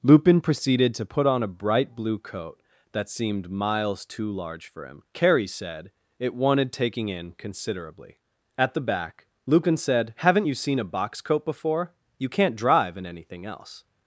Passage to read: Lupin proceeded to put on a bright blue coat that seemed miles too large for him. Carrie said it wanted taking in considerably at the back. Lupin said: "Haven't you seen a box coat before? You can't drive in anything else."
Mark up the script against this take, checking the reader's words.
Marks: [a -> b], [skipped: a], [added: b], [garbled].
Lupin proceeded to put on a bright blue coat that seemed miles too large for him. Carrie said it wanted taking in considerably at the back. Lupin said: "Haven't you seen a box coat before? You can't drive in anything else."